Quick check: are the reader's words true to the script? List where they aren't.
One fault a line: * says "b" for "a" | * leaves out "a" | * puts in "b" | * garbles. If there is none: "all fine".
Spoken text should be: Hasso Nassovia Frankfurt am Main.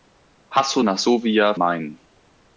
* leaves out "Frankfurt am"